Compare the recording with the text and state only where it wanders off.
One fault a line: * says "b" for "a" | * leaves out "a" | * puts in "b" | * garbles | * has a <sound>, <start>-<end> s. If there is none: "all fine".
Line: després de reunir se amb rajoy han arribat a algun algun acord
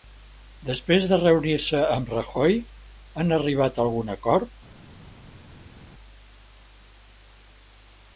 * leaves out "algun"